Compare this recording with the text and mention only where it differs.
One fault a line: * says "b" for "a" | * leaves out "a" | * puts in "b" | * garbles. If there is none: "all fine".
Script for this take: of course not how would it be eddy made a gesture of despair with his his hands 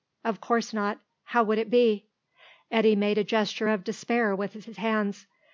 all fine